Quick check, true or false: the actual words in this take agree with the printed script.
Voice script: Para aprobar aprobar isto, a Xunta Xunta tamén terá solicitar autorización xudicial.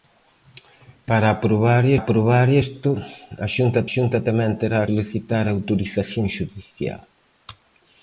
true